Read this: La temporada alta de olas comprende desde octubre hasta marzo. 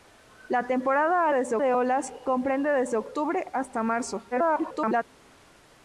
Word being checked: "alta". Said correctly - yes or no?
no